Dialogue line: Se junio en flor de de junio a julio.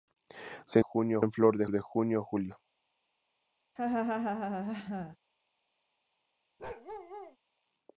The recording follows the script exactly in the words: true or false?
true